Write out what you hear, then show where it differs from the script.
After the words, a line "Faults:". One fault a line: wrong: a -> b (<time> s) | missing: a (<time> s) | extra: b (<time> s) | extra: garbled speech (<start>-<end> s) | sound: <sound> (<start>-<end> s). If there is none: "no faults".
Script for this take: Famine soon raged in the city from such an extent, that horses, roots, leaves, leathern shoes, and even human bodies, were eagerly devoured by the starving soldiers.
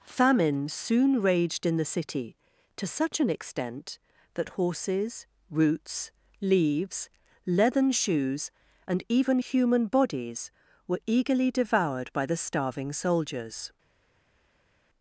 Famine soon raged in the city to such an extent, that horses, roots, leaves, leathern shoes, and even human bodies, were eagerly devoured by the starving soldiers.
Faults:
wrong: from -> to (2.8 s)